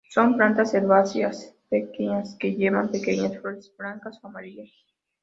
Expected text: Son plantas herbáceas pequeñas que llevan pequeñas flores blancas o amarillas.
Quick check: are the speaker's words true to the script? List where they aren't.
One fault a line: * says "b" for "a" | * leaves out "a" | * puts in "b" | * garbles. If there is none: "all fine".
all fine